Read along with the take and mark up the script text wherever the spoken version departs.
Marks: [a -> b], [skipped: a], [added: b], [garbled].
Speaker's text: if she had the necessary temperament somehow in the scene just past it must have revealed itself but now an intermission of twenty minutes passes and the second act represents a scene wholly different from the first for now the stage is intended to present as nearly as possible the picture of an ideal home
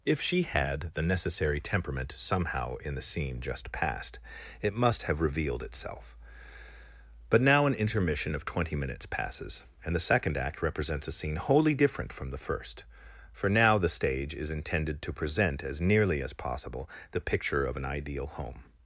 if she had the necessary temperament somehow in the scene just past it must have revealed itself but now an intermission of twenty minutes passes and the second act represents a scene wholly different from the first for now the stage is intended to present as nearly as possible the picture of an ideal home